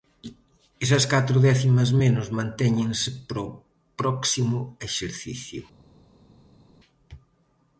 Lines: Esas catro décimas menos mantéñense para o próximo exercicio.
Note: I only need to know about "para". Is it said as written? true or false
true